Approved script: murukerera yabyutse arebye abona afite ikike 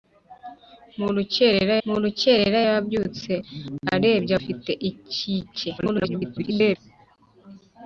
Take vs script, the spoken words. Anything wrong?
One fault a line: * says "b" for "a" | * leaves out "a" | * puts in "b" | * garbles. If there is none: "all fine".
* puts in "murukerera"
* leaves out "abona"
* garbles